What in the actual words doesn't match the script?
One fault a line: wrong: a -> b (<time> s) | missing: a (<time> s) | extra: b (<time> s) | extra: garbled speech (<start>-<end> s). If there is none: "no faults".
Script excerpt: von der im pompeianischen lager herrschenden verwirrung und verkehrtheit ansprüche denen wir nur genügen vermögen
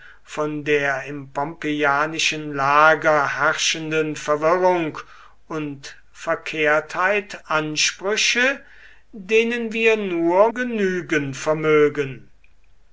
no faults